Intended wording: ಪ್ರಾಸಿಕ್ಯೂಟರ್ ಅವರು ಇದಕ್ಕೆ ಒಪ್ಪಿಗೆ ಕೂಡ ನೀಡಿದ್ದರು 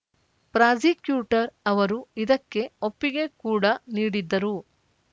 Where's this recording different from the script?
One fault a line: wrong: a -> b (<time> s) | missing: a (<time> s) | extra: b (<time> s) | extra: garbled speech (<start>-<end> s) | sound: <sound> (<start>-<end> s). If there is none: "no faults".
no faults